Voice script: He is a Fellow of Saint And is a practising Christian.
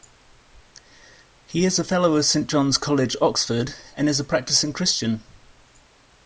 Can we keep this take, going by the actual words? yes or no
no